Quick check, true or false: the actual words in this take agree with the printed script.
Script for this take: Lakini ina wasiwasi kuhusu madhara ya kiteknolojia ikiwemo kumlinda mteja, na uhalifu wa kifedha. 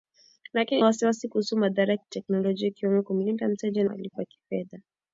false